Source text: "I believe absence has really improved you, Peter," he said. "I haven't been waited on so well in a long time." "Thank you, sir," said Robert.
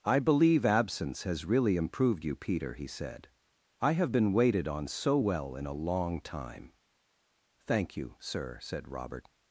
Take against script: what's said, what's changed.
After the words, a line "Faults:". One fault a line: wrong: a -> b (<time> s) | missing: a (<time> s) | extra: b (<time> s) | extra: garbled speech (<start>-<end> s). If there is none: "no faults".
"I believe absence has really improved you, Peter," he said. "I have been waited on so well in a long time." "Thank you, sir," said Robert.
Faults:
wrong: haven't -> have (3.9 s)